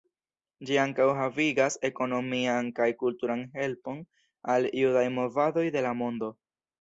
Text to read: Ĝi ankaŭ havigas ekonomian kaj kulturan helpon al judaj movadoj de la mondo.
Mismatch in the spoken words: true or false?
false